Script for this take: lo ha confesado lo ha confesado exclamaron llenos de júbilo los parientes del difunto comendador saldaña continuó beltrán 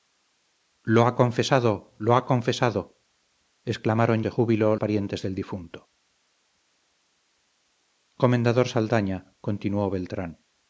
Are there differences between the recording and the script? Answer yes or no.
yes